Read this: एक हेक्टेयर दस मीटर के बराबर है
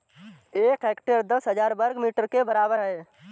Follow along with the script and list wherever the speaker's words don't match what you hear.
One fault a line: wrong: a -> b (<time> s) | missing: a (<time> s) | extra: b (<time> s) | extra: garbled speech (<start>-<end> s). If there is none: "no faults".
extra: हजार वर्ग (1.5 s)